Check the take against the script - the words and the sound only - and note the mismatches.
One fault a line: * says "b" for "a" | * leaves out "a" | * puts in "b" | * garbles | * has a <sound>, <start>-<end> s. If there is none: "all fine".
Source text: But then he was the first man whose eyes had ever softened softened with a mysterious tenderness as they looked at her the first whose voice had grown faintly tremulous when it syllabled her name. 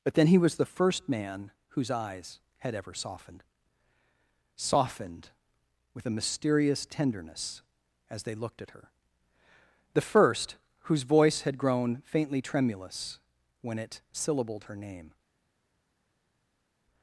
all fine